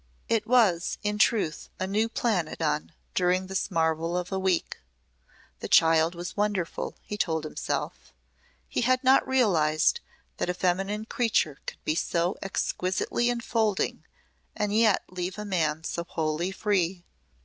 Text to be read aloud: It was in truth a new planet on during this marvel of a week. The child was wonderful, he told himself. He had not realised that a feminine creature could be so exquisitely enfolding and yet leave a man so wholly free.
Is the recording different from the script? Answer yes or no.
no